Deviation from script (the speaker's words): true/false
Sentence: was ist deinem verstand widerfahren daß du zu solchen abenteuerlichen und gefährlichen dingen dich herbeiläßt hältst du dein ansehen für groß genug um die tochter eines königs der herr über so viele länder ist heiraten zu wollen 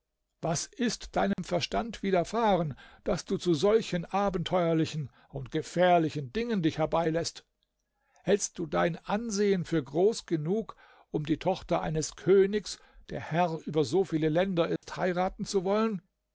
false